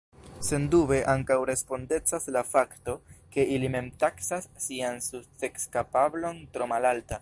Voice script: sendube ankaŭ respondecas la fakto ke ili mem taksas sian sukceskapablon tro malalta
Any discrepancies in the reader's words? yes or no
no